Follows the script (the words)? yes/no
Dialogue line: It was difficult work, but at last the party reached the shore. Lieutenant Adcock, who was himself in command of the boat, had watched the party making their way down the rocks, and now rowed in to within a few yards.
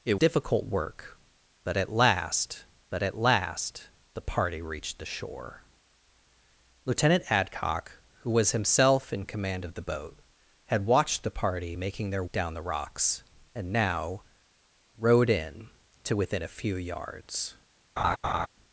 no